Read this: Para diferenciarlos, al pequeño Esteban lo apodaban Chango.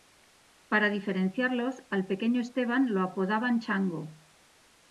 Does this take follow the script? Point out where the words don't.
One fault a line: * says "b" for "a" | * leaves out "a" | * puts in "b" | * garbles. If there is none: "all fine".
all fine